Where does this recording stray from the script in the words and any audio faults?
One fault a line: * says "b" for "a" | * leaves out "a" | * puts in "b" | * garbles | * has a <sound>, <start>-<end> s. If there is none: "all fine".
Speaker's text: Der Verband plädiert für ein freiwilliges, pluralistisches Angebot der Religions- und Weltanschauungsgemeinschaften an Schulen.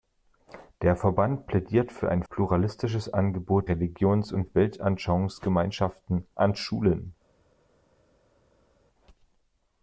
* leaves out "freiwilliges"
* leaves out "der"